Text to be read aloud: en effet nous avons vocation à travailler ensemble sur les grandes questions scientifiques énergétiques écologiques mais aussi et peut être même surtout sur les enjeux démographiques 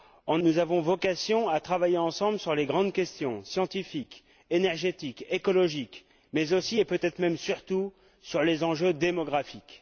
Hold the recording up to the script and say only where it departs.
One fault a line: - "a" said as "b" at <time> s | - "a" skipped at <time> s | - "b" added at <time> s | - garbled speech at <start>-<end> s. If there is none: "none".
- "effet" skipped at 0.4 s